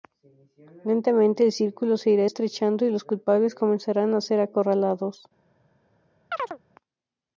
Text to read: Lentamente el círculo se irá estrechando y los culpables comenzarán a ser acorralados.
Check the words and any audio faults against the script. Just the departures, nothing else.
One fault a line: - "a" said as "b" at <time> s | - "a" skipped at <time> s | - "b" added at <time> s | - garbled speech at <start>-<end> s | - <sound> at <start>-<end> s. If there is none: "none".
- chirp at 6.3-6.6 s